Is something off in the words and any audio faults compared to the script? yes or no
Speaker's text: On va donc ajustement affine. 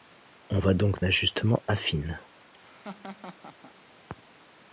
yes